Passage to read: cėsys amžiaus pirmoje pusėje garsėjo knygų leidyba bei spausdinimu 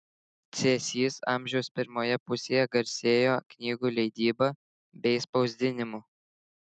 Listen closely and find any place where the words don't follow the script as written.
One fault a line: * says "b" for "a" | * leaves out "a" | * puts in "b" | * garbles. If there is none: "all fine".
all fine